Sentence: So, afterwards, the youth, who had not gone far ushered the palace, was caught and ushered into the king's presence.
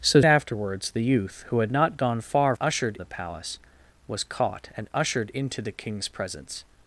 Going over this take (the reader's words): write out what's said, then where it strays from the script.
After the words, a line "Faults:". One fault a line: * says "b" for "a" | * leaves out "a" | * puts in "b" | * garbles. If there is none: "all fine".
So, afterwards, the youth, who had not gone far ushered the palace, was caught and ushered into the king's presence.
Faults:
all fine